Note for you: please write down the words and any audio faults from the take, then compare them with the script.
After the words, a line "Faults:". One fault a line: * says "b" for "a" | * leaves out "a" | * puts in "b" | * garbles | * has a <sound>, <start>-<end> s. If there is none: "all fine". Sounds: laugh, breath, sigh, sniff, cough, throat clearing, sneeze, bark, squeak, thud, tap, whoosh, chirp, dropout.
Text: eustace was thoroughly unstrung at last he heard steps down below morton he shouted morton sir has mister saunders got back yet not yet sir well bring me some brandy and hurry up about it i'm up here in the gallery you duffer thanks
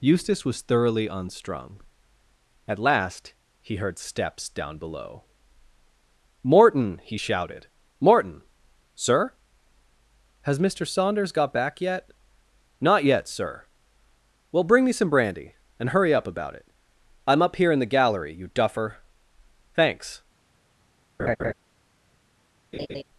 eustace was thoroughly unstrung at last he heard steps down below morton he shouted morton sir has mister saunders got back yet not yet sir well bring me some brandy and hurry up about it i'm up here in the gallery you duffer thanks
Faults:
* has a laugh, 21.2-21.5 s
* has a laugh, 22.7-23.0 s